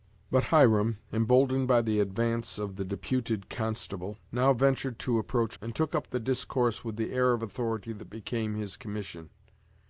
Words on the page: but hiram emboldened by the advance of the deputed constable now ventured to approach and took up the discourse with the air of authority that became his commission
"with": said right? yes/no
yes